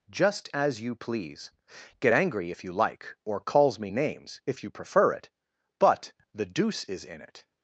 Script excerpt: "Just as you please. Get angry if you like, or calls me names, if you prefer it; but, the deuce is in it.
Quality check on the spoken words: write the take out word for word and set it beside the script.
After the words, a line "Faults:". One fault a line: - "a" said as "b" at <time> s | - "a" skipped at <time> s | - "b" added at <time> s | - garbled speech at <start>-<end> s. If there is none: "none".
"Just as you please. Get angry if you like, or calls me names, if you prefer it; but, the deuce is in it.
Faults:
none